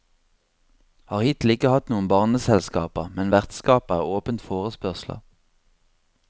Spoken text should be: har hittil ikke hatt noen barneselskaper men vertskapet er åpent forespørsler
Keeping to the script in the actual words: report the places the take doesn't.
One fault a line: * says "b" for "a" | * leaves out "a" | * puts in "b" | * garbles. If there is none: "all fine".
all fine